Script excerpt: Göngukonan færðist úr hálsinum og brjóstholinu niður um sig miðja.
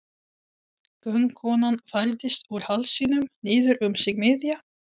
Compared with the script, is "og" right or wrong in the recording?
wrong